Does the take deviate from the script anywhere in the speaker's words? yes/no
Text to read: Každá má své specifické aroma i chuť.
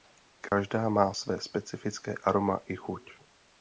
no